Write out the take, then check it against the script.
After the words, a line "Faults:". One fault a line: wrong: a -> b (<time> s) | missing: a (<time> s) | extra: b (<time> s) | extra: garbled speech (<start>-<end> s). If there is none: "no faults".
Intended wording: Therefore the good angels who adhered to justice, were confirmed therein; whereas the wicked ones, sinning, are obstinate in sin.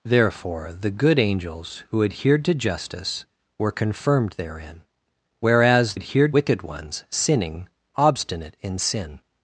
Therefore the good angels who adhered to justice, were confirmed therein; whereas adhered wicked ones, sinning, obstinate in sin.
Faults:
wrong: the -> adhered (5.9 s)
missing: are (7.7 s)